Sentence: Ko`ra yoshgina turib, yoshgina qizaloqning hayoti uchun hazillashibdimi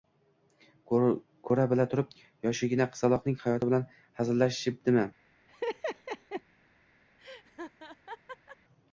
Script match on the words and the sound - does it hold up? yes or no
no